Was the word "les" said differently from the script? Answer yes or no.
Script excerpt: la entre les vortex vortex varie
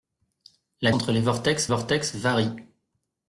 no